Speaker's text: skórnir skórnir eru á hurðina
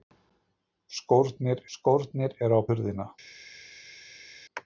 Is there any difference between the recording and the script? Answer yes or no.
no